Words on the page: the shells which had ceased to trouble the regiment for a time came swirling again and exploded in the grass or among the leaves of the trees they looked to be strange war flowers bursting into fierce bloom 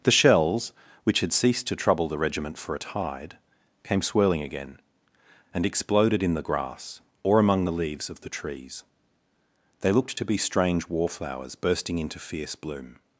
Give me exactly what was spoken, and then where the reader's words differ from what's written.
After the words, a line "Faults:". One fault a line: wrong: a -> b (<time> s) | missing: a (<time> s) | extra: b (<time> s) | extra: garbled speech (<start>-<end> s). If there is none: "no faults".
the shells which had ceased to trouble the regiment for a tide came swirling again and exploded in the grass or among the leaves of the trees they looked to be strange war flowers bursting into fierce bloom
Faults:
wrong: time -> tide (2.8 s)